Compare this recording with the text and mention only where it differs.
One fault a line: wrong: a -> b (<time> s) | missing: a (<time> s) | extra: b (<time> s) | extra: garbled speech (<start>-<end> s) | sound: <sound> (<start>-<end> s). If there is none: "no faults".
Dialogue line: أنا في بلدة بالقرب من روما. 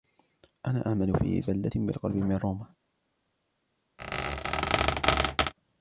extra: أعمل (0.9 s)
sound: squeak (4.0-5.5 s)